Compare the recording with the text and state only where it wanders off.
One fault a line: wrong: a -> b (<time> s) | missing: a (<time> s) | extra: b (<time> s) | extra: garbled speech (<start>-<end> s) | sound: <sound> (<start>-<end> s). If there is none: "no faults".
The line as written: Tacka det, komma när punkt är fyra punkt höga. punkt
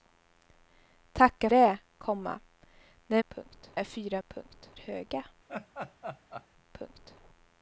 sound: laugh (5.5-6.5 s)